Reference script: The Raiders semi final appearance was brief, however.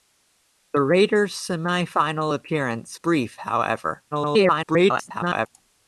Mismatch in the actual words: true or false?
true